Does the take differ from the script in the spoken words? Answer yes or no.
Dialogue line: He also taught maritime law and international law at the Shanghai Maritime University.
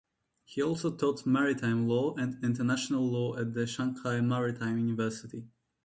no